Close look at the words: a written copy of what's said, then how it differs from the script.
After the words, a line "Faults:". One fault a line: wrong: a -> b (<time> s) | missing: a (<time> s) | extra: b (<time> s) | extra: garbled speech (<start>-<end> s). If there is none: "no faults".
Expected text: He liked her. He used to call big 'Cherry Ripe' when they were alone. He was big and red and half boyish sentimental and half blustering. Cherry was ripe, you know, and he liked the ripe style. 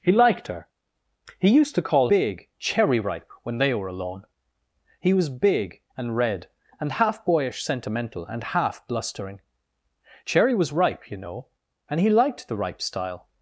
He liked her. He used to call big 'Cherry Ripe' when they were alone. He was big and red and half boyish sentimental and half blustering. Cherry was ripe, you know, and he liked the ripe style.
Faults:
no faults